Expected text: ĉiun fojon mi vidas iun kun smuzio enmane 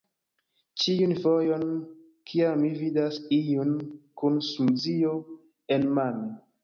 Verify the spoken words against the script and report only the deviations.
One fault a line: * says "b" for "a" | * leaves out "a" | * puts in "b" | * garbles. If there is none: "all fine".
* puts in "kiam"